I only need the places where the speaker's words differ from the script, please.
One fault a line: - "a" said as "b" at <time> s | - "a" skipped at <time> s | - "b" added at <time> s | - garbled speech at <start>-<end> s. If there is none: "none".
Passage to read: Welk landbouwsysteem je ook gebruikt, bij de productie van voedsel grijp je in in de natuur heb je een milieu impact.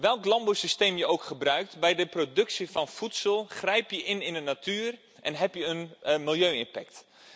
- "en" added at 5.2 s